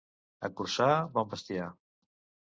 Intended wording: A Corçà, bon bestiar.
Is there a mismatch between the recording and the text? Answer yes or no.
no